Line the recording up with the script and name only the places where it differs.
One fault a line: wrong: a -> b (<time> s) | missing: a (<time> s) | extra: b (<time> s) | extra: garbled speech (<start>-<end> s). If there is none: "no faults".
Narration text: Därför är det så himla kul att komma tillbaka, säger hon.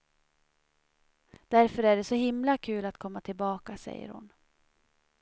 no faults